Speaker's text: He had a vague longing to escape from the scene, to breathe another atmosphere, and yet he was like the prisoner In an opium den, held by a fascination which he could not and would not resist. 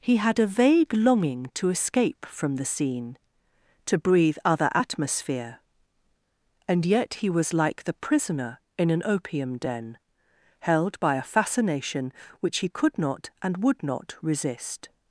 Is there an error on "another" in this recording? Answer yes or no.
yes